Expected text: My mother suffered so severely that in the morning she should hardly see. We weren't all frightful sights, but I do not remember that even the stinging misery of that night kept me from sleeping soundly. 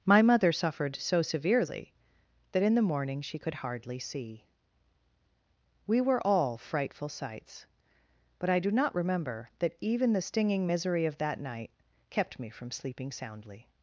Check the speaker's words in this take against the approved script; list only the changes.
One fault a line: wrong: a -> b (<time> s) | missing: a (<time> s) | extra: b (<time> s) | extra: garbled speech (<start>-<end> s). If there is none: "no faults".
wrong: should -> could (3.4 s)
wrong: weren't -> were (6.0 s)